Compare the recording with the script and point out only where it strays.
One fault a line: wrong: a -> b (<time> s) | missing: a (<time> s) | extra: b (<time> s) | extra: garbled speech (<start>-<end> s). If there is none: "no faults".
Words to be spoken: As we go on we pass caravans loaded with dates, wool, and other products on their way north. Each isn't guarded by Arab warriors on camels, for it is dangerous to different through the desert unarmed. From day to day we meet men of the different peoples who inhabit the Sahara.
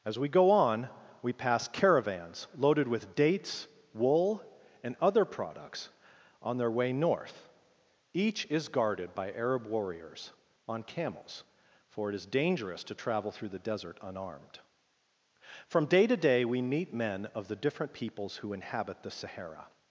wrong: isn't -> is (8.5 s)
wrong: different -> travel (12.9 s)